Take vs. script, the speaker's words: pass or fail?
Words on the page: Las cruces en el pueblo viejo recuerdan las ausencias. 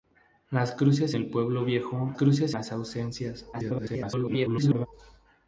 fail